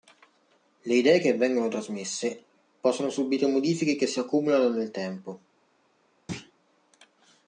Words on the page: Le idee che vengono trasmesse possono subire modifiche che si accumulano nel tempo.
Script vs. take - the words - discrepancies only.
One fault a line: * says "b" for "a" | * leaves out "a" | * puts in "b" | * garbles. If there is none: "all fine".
all fine